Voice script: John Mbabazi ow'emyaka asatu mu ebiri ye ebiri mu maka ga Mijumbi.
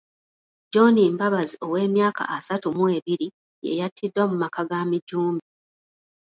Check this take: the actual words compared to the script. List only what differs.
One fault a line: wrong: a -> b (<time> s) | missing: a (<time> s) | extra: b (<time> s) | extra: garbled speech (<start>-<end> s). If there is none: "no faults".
wrong: ebiri -> yattiddwa (3.8 s)